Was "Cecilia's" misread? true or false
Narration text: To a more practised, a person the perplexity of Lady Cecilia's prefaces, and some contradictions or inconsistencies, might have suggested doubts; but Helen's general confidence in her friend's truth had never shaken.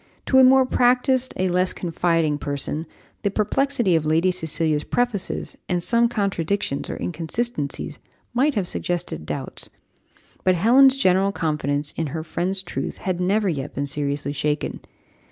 false